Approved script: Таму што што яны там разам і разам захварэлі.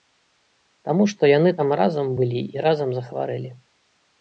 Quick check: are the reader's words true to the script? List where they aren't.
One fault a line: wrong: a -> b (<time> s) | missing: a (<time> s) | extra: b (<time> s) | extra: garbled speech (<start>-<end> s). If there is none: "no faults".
missing: што (1.3 s)
extra: былі (2.2 s)